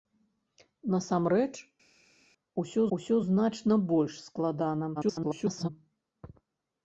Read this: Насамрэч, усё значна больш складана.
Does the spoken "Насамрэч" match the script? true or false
true